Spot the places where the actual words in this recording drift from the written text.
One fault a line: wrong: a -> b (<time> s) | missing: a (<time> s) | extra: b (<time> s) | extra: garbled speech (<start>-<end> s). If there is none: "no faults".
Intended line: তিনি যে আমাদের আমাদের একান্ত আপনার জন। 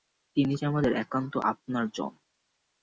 missing: আমাদের (0.9 s)